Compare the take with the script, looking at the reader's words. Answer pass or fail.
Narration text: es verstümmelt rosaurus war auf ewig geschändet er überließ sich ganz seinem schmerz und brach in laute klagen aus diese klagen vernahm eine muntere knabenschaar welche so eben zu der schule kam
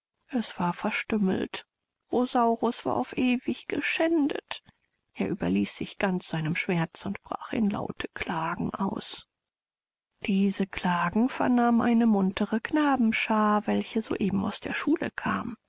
fail